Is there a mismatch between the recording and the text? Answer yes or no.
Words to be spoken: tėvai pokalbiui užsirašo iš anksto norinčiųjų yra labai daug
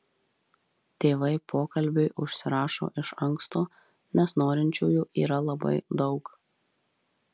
yes